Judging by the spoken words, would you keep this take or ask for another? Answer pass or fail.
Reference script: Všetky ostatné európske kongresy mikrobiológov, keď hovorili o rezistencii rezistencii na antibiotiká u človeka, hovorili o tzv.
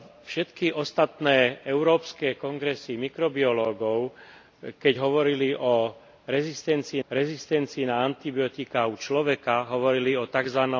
pass